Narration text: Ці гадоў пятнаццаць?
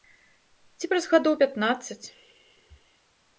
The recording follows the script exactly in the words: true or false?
false